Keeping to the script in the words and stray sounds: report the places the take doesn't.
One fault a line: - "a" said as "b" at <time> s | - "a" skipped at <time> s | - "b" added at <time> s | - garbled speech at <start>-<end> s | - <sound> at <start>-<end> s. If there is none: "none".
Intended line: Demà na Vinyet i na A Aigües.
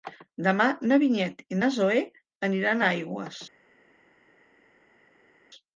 - "Zoè aniran" added at 1.8 s